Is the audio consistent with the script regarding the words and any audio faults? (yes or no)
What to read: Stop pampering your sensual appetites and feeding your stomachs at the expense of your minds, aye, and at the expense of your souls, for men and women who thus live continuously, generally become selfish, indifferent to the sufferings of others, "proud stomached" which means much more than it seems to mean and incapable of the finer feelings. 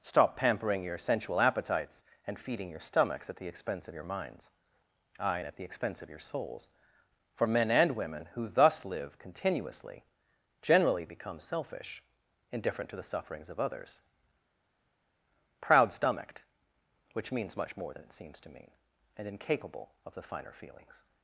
yes